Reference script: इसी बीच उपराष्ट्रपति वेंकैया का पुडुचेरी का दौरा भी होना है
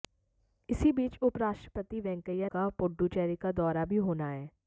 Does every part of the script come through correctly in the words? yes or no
yes